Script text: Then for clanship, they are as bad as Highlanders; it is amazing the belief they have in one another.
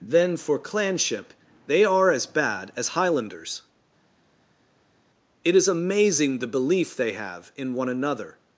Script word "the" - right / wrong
right